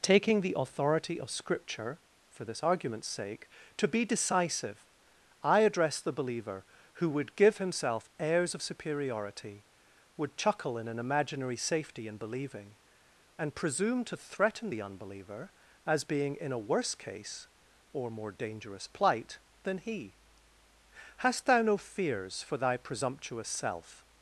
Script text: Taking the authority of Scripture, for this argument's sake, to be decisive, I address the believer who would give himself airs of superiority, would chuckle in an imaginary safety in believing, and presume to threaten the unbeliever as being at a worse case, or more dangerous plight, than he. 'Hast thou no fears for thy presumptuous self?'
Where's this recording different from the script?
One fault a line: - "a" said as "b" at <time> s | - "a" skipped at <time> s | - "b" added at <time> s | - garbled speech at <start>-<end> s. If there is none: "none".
- "at" said as "in" at 16.4 s